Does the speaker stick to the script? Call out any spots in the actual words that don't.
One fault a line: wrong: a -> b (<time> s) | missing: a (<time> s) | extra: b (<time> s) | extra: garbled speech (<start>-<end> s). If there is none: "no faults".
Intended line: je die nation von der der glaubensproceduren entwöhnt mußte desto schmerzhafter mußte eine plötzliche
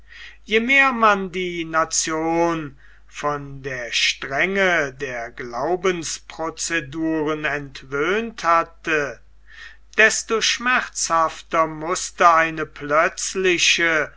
extra: mehr man (0.6 s)
extra: strenge (3.9 s)
wrong: mußte -> hatte (8.4 s)